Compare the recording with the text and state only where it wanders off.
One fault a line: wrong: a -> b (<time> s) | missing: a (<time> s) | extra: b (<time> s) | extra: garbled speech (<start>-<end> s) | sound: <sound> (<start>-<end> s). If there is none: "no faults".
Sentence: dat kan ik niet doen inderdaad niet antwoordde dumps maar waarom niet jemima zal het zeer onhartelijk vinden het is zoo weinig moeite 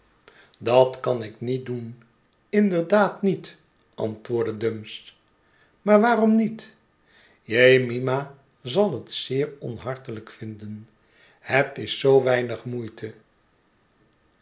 no faults